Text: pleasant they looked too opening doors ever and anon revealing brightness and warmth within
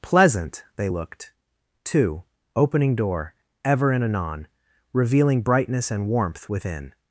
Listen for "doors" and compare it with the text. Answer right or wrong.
wrong